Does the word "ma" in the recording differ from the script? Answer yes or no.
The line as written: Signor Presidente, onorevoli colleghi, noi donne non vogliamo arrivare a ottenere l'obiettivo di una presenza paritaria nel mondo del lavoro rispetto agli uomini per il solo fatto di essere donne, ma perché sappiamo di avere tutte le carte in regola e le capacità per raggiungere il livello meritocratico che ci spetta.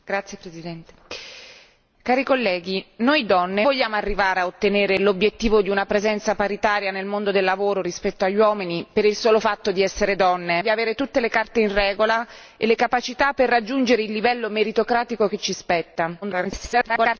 yes